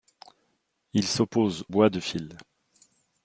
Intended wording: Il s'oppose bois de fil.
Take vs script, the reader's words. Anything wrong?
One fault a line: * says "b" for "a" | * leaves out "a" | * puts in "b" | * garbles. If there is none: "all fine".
all fine